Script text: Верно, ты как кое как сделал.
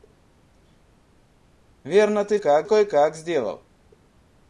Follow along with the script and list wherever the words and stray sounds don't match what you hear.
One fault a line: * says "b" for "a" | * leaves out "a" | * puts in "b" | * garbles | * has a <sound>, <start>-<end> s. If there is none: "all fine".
all fine